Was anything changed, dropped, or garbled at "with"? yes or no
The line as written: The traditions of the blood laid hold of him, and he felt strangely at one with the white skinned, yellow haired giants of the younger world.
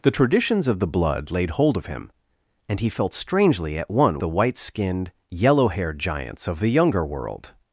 yes